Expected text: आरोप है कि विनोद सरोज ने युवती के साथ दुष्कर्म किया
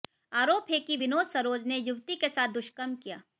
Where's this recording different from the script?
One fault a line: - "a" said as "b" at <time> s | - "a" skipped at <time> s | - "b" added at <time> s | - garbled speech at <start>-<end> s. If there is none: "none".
none